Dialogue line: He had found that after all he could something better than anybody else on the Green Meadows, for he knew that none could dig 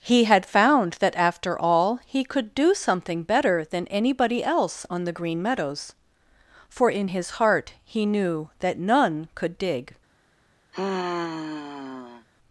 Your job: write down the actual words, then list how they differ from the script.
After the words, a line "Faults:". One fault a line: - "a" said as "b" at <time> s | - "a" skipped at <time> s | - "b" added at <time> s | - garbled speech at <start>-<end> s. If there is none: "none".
He had found that after all he could do something better than anybody else on the Green Meadows, for in his heart he knew that none could dig
Faults:
- "do" added at 2.5 s
- "in his heart" added at 6.9 s